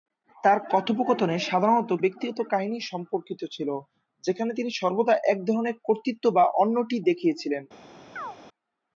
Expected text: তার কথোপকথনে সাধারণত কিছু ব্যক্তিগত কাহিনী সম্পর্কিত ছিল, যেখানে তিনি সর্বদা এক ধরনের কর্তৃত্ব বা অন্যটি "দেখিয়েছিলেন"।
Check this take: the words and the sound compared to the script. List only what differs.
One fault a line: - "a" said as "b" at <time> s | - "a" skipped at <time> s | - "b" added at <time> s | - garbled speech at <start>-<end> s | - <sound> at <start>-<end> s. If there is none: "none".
- "কিছু" skipped at 1.9 s
- chirp at 8.2-8.4 s